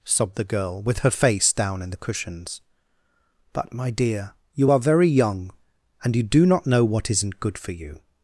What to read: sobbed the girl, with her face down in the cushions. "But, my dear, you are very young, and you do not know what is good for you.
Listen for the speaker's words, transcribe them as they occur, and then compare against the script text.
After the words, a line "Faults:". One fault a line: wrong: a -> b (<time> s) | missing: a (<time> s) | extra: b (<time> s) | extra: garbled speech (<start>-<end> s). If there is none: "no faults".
sobbed the girl, with her face down in the cushions. "But, my dear, you are very young, and you do not know what isn't good for you.
Faults:
wrong: is -> isn't (7.1 s)